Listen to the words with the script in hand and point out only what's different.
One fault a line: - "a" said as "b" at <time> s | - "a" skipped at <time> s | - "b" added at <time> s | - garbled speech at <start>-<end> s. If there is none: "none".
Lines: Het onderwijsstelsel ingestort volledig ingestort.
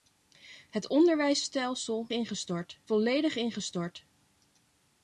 none